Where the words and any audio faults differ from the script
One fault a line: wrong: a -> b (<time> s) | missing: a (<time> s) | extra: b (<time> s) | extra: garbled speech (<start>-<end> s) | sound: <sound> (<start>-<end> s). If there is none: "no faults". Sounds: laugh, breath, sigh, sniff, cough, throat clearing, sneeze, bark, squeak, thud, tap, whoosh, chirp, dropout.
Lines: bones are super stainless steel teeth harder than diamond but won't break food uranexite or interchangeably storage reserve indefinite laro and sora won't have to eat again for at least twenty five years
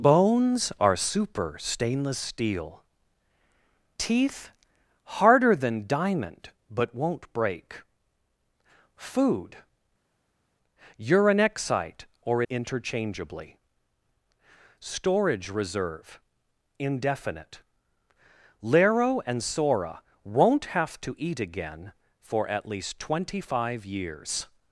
no faults